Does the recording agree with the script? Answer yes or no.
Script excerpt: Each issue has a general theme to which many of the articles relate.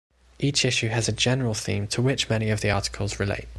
yes